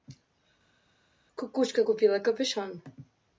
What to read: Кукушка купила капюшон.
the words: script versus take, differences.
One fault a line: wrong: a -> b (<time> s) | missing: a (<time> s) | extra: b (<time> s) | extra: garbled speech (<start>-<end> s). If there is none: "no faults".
no faults